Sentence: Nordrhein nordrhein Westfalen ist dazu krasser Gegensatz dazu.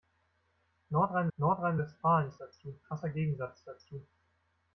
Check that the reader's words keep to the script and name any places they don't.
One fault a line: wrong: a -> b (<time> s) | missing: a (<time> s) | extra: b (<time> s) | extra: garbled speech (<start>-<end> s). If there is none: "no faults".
no faults